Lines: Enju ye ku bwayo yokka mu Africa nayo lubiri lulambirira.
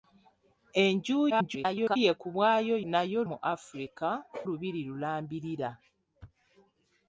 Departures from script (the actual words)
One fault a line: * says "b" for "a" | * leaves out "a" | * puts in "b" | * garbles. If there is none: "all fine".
* garbles
* says "nayo" for "yokka"
* leaves out "nayo"